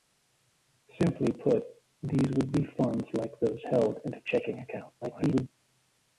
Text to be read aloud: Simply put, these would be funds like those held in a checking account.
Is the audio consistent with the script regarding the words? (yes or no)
no